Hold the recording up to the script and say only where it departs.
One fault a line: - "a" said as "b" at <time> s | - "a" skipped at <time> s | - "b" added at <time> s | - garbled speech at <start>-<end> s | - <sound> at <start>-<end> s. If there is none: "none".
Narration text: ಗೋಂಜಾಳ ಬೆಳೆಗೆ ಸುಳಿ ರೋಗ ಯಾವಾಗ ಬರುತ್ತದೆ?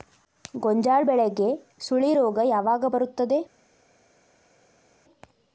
none